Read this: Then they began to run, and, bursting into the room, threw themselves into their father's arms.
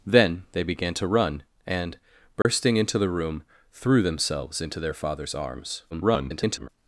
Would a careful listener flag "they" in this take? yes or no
no